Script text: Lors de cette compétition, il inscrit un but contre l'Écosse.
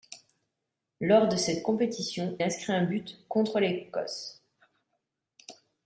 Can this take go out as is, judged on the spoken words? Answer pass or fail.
fail